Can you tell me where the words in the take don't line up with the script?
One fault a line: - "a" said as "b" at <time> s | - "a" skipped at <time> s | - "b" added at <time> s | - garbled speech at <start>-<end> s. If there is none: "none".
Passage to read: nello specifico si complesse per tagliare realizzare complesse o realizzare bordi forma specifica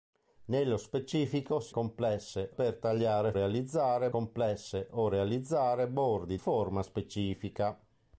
none